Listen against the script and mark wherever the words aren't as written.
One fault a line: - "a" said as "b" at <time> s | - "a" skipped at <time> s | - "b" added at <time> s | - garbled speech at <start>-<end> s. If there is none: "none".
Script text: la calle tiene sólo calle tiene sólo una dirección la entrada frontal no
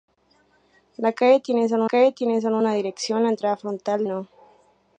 none